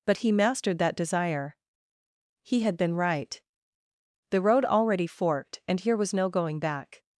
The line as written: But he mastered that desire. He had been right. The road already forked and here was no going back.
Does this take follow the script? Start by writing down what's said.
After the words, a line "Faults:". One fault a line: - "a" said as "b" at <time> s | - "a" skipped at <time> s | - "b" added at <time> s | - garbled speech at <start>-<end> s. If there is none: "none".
But he mastered that desire. He had been right. The road already forked and here was no going back.
Faults:
none